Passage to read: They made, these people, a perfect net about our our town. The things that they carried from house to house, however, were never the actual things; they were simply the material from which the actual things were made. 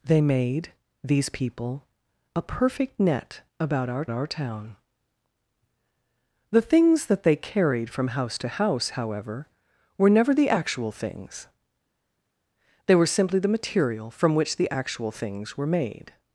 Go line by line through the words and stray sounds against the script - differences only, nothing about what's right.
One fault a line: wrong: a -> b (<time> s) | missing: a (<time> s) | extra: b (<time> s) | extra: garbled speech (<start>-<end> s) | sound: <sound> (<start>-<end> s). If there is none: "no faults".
no faults